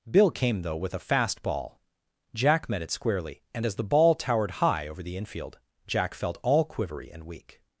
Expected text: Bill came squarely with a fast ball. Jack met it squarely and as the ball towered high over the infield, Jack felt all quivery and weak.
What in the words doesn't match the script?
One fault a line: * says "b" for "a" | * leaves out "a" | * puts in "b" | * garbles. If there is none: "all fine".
* says "though" for "squarely"